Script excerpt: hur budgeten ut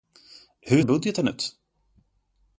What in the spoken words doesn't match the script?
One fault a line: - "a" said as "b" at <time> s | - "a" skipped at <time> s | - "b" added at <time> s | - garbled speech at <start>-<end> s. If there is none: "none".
none